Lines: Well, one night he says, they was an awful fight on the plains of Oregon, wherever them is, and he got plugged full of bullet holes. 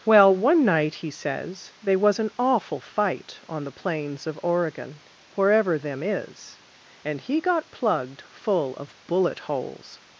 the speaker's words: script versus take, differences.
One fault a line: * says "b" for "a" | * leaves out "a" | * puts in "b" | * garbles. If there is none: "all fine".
all fine